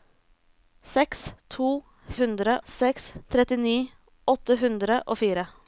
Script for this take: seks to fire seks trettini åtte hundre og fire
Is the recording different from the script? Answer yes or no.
yes